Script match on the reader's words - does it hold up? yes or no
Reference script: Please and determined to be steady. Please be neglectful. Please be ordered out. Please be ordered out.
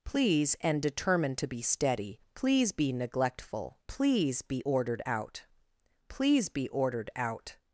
yes